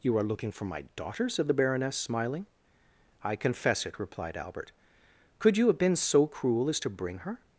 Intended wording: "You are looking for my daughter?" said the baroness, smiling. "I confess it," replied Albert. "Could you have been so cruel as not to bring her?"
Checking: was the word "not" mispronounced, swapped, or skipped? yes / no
yes